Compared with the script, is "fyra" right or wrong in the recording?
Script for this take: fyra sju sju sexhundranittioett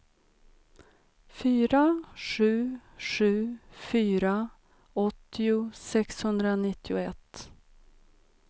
right